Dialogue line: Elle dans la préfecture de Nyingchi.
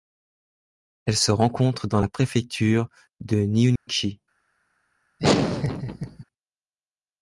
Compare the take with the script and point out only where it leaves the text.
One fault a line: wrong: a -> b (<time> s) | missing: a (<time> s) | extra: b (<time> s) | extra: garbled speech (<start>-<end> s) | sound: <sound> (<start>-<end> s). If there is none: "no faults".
extra: se rencontre (1.1 s)
sound: dropout (3.8-3.9 s)
sound: laugh (5.2-6.2 s)